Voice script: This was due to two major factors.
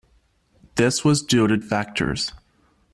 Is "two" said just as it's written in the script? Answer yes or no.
no